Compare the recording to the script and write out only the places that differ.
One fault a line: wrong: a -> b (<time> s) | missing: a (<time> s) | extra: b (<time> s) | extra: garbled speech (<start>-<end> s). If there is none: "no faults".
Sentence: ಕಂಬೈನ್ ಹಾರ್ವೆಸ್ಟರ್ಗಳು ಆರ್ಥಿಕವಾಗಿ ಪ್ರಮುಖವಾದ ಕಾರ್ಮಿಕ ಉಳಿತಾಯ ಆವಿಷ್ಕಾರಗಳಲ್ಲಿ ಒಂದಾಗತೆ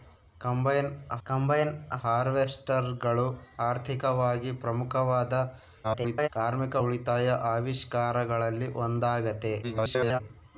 extra: ಕಂಬೈನ್ (1.3 s)
extra: garbled speech (5.8-6.3 s)
extra: garbled speech (9.6-10.2 s)